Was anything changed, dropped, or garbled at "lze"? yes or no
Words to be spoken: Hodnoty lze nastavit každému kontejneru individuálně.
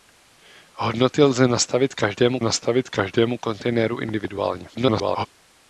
no